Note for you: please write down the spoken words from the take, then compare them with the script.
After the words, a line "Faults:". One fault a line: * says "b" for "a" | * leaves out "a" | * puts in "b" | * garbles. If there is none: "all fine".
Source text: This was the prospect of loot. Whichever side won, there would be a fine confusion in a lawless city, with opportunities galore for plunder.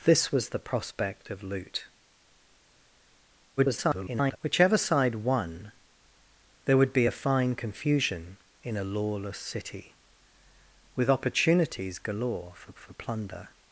This was the prospect of loot. [garbled] Whichever side won, there would be a fine confusion in a lawless city, with opportunities galore for for plunder.
Faults:
* garbles
* puts in "for"